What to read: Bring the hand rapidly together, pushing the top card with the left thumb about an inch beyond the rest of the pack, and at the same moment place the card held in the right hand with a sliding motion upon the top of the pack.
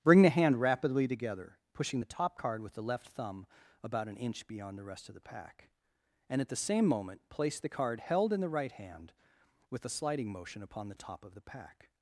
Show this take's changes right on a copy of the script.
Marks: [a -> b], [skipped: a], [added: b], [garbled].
Bring the hand rapidly together, pushing the top card with the left thumb about an inch beyond the rest of the pack, and at the same moment place the card held in the right hand with a sliding motion upon the top of the pack.